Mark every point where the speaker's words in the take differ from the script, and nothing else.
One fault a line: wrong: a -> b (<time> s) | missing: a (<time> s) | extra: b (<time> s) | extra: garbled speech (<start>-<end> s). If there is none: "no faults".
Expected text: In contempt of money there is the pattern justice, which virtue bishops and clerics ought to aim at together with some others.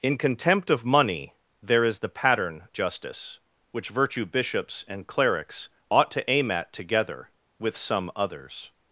no faults